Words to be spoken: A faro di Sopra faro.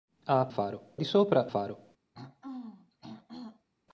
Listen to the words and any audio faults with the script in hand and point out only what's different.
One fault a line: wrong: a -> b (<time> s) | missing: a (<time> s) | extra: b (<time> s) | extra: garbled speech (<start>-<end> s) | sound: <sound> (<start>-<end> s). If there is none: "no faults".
sound: throat clearing (2.1-3.7 s)